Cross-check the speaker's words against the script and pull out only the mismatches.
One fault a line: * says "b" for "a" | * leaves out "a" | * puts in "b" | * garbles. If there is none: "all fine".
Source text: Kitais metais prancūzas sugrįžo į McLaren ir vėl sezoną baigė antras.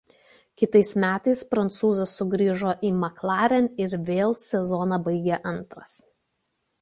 all fine